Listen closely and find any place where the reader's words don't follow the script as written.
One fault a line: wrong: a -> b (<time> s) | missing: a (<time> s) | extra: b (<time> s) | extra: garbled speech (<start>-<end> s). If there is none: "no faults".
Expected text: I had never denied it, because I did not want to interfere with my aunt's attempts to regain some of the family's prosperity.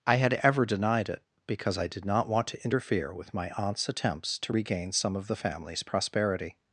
wrong: never -> ever (0.4 s)